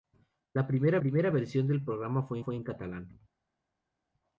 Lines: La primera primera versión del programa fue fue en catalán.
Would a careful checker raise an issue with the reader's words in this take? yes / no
no